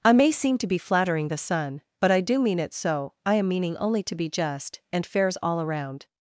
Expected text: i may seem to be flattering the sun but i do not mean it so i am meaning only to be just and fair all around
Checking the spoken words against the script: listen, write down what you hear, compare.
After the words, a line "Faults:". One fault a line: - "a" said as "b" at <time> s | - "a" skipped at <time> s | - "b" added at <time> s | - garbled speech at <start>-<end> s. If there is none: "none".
i may seem to be flattering the sun but i do mean it so i am meaning only to be just and fairs all around
Faults:
- "not" skipped at 2.4 s
- "fair" said as "fairs" at 5.1 s